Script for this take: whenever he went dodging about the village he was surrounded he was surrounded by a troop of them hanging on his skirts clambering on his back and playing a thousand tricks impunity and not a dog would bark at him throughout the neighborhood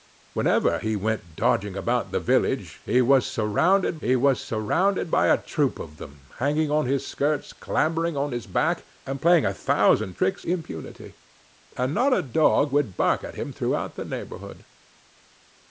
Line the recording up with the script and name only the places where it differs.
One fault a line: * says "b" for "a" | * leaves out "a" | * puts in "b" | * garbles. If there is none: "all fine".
all fine